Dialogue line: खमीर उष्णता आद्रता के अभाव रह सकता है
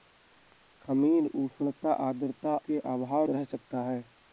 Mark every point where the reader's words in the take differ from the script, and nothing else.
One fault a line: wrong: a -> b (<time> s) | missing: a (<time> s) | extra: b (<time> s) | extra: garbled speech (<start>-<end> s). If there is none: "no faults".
no faults